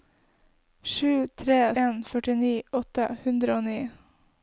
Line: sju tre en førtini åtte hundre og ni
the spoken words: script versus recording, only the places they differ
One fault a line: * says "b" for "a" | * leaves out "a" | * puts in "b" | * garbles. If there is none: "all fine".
all fine